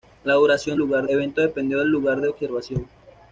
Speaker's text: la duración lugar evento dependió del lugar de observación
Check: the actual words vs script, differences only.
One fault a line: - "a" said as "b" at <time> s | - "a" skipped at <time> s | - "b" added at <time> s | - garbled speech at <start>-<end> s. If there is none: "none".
none